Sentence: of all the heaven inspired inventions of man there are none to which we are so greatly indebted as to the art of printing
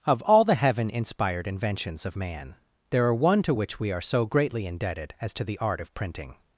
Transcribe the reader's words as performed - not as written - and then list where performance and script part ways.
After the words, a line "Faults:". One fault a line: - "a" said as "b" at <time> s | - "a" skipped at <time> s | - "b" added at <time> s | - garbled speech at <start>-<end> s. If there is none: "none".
of all the heaven inspired inventions of man there are one to which we are so greatly indebted as to the art of printing
Faults:
- "none" said as "one" at 3.1 s